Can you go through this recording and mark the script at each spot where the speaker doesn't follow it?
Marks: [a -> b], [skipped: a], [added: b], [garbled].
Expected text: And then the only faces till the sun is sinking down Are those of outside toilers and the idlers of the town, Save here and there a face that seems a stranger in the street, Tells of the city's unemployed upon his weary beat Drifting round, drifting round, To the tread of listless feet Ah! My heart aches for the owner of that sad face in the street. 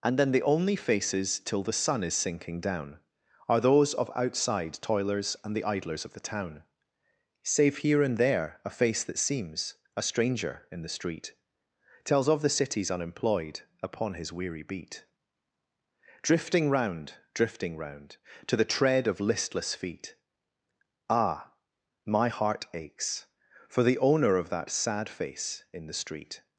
And then the only faces till the sun is sinking down Are those of outside toilers and the idlers of the town, Save here and there a face that seems a stranger in the street, Tells of the city's unemployed upon his weary beat Drifting round, drifting round, To the tread of listless feet Ah! My heart aches for the owner of that sad face in the street.